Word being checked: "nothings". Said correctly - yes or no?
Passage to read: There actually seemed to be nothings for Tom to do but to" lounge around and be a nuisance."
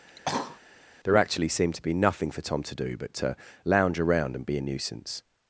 no